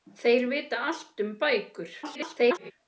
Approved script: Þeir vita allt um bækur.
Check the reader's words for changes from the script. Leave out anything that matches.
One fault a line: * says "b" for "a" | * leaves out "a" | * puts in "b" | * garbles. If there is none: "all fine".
* garbles